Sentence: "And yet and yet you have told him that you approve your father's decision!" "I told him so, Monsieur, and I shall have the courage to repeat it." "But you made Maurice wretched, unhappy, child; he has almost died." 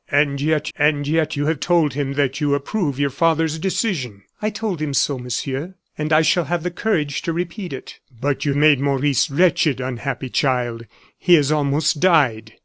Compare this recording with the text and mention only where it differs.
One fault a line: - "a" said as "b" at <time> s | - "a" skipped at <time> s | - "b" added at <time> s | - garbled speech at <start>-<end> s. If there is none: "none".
none